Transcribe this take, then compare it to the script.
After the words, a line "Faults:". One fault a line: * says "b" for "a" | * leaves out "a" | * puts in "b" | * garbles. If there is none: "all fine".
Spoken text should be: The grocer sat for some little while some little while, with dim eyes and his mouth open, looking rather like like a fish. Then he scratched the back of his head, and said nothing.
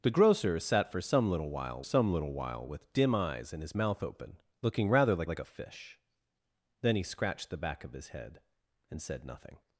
The grocer sat for some little while some little while, with dim eyes and his mouth open, looking rather like like a fish. Then he scratched the back of his head, and said nothing.
Faults:
all fine